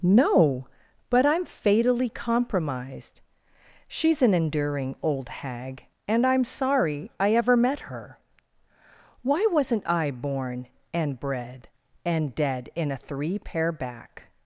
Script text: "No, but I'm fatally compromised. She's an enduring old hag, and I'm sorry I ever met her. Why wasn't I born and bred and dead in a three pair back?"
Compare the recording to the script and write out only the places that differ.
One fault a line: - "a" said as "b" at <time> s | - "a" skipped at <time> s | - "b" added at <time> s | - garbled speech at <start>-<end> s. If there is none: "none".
none